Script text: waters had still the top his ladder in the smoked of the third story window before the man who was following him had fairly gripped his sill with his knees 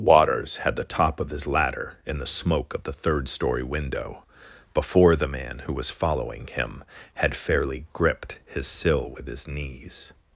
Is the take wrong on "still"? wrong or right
wrong